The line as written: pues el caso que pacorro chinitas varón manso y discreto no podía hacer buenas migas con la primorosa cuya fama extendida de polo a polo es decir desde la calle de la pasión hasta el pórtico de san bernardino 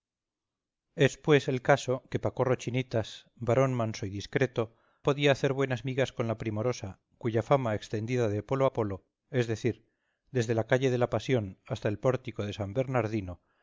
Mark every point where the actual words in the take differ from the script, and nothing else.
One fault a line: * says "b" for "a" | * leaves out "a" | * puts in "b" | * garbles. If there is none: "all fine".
* leaves out "no"